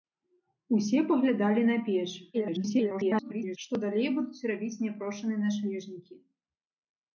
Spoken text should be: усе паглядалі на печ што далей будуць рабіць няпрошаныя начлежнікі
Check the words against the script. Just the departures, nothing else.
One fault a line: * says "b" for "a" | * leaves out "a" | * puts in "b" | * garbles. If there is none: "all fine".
* garbles